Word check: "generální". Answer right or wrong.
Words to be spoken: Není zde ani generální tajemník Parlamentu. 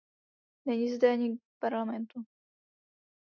wrong